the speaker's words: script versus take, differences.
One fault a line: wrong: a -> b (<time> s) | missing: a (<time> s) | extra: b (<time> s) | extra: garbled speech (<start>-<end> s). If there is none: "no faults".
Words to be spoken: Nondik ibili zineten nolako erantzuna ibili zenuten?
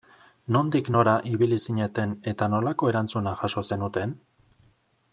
extra: nora (0.9 s)
extra: eta (2.3 s)
wrong: ibili -> jaso (3.4 s)